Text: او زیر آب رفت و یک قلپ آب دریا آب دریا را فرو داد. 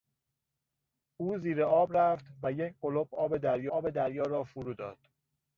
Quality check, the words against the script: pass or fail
pass